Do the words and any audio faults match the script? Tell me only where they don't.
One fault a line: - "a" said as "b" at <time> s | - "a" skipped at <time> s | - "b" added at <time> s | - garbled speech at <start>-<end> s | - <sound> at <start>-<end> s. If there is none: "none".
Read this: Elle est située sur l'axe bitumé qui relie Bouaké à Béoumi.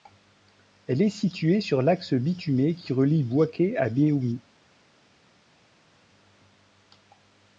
none